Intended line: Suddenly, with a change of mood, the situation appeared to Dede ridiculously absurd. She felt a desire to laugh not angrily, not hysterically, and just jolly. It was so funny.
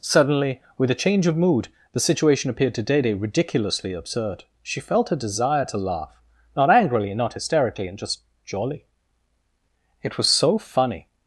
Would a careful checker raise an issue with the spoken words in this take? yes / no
no